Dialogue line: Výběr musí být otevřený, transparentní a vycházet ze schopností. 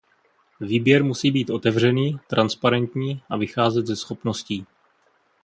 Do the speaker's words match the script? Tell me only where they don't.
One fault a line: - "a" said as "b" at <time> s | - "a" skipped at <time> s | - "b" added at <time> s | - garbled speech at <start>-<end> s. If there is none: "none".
none